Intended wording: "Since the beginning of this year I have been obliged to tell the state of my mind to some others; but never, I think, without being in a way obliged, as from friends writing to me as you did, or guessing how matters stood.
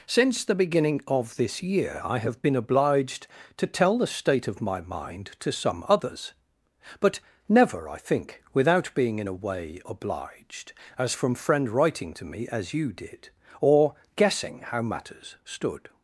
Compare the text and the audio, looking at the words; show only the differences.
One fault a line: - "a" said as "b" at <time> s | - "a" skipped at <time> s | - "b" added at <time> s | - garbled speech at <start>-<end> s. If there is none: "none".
- "friends" said as "friend" at 11.3 s